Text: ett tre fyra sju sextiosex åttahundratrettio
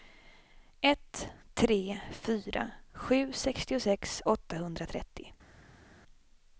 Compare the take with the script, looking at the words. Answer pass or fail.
pass